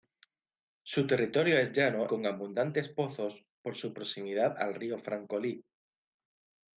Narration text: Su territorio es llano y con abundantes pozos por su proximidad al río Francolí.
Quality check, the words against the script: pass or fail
fail